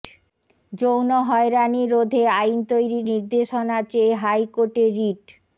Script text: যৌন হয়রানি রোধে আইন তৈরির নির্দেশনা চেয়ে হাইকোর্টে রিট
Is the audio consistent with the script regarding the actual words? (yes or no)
yes